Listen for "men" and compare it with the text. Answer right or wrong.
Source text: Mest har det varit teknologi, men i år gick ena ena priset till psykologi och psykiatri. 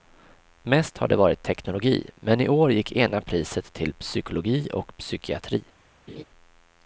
right